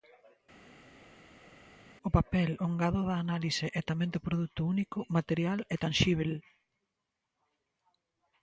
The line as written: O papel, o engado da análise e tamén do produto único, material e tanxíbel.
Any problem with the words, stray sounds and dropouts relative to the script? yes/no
no